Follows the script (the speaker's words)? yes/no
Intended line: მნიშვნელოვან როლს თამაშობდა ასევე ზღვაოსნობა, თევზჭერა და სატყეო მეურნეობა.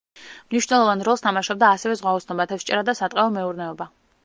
yes